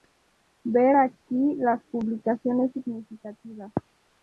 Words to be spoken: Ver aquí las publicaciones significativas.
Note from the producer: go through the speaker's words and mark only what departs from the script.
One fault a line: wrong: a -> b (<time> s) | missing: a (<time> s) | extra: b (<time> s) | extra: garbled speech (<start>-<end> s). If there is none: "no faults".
no faults